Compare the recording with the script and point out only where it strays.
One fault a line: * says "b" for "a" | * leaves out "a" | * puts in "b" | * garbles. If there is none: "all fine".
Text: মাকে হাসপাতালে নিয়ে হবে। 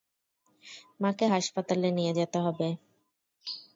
* puts in "যেতে"